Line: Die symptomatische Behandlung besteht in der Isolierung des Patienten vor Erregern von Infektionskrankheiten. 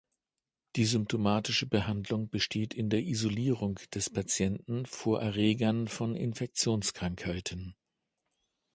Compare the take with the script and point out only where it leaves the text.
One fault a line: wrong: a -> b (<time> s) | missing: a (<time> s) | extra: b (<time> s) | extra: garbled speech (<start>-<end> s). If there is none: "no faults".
no faults